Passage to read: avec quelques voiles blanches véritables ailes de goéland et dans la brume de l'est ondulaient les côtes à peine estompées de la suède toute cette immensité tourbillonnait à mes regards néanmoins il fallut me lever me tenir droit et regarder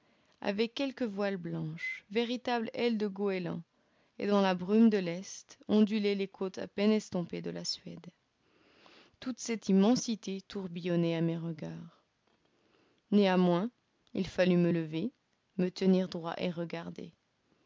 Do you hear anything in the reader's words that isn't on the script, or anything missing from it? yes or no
no